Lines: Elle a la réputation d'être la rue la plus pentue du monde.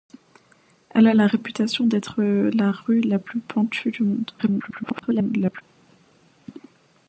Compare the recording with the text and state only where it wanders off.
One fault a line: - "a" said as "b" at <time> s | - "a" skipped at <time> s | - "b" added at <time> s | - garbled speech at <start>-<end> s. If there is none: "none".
- garbled speech at 4.4-5.6 s